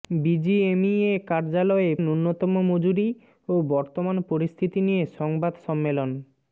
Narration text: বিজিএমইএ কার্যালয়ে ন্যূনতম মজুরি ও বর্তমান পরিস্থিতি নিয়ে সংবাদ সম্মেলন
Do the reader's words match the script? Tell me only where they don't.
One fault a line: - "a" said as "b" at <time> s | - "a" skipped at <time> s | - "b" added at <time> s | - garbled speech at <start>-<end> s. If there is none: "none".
none